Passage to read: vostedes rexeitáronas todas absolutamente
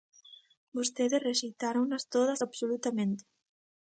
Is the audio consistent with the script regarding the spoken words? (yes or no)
yes